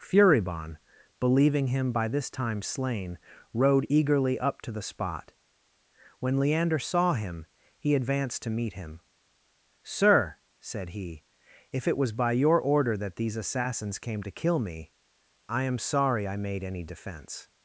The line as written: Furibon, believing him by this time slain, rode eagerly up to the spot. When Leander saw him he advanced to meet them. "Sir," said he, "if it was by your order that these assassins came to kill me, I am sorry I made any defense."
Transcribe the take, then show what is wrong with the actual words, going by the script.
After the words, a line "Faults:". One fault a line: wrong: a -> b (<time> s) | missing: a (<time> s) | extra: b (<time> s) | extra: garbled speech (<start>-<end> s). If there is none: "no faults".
Furibon, believing him by this time slain, rode eagerly up to the spot. When Leander saw him he advanced to meet him. "Sir," said he, "if it was by your order that these assassins came to kill me, I am sorry I made any defense."
Faults:
wrong: them -> him (8.7 s)